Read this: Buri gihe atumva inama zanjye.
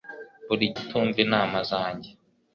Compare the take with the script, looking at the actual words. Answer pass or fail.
fail